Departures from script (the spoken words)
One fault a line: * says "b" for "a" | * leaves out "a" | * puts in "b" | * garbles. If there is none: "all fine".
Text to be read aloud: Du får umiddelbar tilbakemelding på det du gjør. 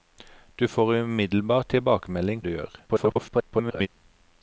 * leaves out "på det"
* garbles